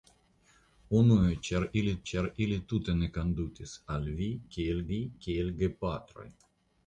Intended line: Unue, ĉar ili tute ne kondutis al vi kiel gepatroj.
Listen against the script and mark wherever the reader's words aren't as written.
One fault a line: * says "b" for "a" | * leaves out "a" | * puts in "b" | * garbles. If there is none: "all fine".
* puts in "ĉar ili"
* puts in "vi kiel"